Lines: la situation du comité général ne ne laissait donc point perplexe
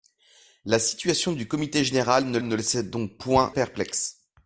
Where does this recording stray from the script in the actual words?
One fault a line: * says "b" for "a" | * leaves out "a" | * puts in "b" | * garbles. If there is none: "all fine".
all fine